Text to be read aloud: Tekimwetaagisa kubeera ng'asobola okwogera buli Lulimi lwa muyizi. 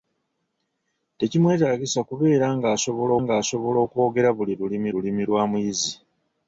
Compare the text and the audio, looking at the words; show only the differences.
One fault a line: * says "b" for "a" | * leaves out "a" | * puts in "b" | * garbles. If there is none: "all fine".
* puts in "ng'asobola"
* puts in "Lulimi"